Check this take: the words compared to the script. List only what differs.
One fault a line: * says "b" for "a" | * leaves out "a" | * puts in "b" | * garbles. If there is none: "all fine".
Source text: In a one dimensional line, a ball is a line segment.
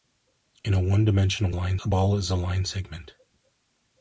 all fine